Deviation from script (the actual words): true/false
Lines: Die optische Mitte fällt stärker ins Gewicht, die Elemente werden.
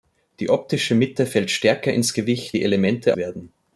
false